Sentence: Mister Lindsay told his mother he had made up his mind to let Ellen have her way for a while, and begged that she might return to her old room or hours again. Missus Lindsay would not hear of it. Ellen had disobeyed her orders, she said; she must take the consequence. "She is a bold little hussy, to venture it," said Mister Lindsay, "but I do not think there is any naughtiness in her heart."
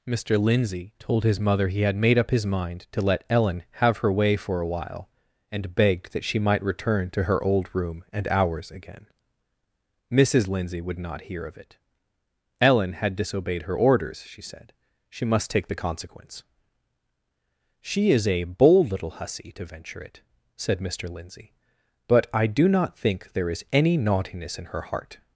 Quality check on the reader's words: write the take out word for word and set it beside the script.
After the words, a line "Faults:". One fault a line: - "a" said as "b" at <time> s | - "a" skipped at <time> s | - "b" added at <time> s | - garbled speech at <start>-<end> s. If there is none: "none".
Mister Lindsay told his mother he had made up his mind to let Ellen have her way for a while, and begged that she might return to her old room and hours again. Missus Lindsay would not hear of it. Ellen had disobeyed her orders, she said; she must take the consequence. "She is a bold little hussy, to venture it," said Mister Lindsay, "but I do not think there is any naughtiness in her heart."
Faults:
- "or" said as "and" at 8.1 s